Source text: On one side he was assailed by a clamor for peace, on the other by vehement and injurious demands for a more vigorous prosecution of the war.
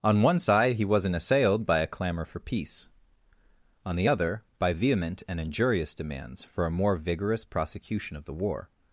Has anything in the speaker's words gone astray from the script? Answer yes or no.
yes